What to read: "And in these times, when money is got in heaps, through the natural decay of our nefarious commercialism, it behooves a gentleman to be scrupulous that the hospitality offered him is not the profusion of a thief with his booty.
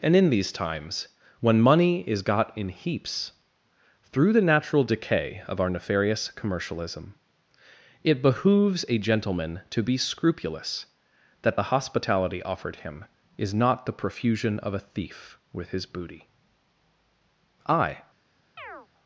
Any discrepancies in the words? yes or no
yes